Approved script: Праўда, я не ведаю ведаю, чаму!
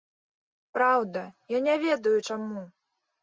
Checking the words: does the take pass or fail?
fail